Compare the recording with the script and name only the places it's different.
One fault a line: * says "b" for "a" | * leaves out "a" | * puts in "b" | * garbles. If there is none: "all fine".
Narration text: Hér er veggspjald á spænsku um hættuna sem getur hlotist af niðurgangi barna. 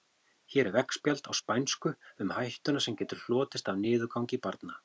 all fine